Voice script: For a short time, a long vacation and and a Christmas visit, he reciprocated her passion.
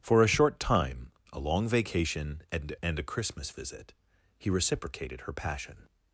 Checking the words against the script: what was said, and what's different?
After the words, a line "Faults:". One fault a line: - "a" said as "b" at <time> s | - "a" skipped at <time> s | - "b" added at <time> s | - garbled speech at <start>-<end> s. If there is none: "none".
For a short time, a long vacation and and a Christmas visit, he reciprocated her passion.
Faults:
none